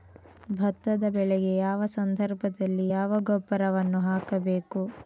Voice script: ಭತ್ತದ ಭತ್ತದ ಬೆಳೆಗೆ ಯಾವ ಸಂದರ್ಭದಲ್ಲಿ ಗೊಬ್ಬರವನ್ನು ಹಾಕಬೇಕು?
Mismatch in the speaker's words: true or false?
true